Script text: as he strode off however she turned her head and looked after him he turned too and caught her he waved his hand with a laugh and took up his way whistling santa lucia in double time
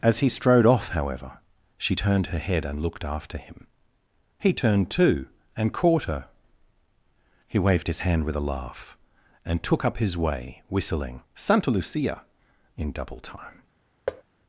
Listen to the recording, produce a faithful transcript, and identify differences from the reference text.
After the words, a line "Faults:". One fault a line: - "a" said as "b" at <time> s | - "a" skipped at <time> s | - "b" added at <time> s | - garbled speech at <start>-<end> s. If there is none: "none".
as he strode off however she turned her head and looked after him he turned too and caught her he waved his hand with a laugh and took up his way whistling santa lucia in double time
Faults:
none